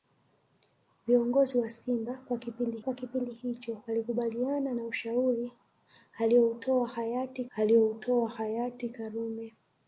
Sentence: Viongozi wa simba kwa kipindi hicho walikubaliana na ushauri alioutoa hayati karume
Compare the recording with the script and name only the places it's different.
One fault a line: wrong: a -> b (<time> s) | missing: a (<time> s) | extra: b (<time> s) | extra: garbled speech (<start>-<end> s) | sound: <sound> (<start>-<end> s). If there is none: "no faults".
extra: kwa kipindi (2.8 s)
extra: alioutoa hayati (7.5 s)